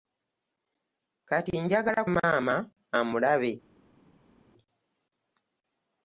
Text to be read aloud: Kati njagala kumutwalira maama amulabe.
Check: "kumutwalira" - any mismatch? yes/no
yes